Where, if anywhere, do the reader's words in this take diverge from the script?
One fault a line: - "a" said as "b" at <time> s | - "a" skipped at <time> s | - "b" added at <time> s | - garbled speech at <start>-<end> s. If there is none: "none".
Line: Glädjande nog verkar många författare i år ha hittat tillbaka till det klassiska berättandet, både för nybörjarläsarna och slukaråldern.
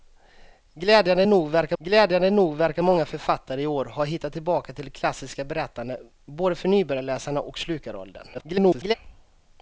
- "glädjande nog verkar" added at 1.8 s
- garbled speech at 8.3-8.9 s